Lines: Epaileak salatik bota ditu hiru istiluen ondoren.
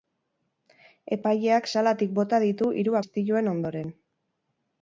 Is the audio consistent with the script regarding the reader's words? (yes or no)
yes